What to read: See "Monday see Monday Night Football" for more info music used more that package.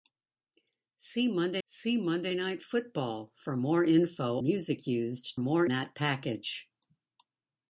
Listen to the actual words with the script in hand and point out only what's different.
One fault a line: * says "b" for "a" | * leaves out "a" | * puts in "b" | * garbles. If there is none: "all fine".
all fine